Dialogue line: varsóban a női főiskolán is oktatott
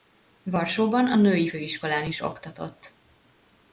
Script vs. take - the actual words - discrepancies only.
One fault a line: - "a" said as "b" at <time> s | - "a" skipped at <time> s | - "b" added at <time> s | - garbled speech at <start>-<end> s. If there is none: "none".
none